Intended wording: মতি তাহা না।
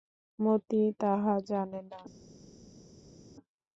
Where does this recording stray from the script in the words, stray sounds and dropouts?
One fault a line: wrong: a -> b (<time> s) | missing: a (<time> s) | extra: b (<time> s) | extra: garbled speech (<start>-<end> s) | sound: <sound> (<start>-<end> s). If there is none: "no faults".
extra: জানে (1.5 s)